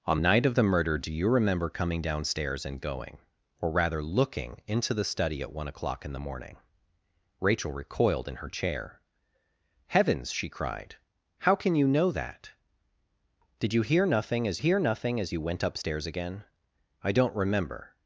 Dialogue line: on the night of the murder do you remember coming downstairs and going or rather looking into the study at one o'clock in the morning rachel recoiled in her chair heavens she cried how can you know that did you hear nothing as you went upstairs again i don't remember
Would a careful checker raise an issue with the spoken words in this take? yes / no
yes